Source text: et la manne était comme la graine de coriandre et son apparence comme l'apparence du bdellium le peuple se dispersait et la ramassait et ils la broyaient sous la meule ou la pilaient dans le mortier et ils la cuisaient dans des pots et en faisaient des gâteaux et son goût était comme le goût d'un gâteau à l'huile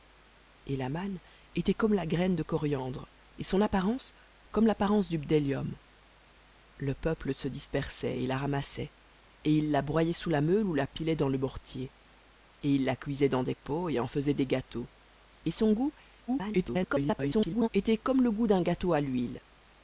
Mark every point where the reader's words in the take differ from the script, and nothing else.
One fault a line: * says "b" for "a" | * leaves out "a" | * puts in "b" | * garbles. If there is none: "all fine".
* garbles